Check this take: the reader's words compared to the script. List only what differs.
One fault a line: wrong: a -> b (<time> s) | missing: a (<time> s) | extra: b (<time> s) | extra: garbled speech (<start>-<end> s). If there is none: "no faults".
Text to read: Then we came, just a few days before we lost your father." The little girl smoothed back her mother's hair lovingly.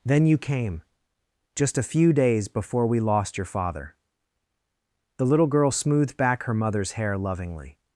wrong: we -> you (0.2 s)